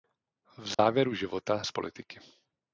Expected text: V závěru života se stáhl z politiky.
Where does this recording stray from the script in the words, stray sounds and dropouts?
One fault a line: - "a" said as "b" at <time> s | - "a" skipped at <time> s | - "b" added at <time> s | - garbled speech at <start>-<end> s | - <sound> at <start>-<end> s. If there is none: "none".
- dropout at 0.7-0.8 s
- "se stáhl" skipped at 1.6 s